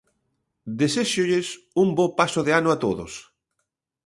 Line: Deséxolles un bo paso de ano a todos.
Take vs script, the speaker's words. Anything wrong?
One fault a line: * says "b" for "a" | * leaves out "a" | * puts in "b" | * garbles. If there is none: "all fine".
all fine